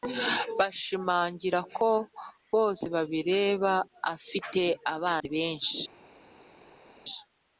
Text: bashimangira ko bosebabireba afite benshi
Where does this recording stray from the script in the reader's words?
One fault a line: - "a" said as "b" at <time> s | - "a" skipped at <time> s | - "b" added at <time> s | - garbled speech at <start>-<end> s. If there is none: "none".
- "abanzi" added at 4.9 s